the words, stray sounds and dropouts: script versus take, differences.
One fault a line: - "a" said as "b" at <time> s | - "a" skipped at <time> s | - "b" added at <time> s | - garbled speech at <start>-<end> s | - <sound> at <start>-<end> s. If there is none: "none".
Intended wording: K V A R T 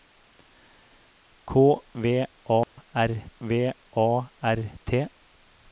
- dropout at 2.6-2.8 s
- "V A R" added at 3.4 s